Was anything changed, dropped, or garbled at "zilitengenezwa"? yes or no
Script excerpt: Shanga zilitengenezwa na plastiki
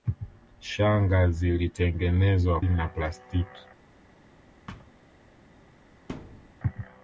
no